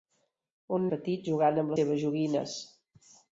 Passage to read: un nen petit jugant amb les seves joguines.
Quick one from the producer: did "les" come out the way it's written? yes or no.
no